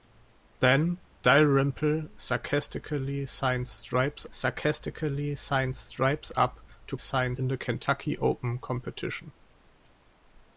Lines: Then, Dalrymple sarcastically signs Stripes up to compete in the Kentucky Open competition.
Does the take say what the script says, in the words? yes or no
no